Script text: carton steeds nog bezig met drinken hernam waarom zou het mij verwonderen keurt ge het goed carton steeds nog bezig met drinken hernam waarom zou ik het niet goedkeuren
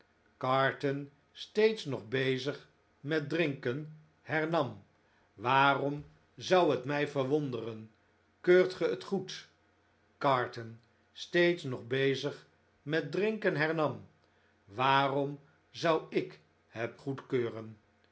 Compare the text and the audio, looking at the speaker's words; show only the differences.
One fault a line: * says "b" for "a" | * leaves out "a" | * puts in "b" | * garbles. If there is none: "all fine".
* leaves out "niet"